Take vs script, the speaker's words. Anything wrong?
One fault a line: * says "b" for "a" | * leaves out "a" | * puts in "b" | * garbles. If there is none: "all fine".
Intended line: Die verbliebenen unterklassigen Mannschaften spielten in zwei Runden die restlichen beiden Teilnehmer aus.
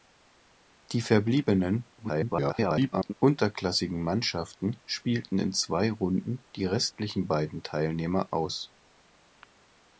* garbles